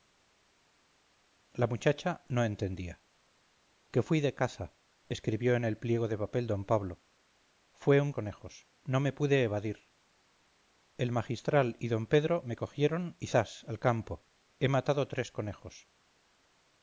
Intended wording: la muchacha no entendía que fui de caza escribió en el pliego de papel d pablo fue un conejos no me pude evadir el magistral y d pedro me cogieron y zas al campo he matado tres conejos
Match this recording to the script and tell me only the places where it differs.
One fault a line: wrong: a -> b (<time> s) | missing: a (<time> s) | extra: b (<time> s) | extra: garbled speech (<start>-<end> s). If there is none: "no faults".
no faults